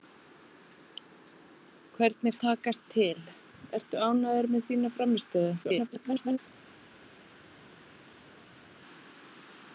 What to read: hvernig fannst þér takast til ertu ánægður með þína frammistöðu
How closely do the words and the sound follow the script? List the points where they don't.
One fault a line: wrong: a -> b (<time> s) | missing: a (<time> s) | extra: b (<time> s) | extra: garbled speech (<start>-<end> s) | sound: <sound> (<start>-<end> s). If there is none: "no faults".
missing: fannst þér (2.3 s)
extra: garbled speech (5.6-6.4 s)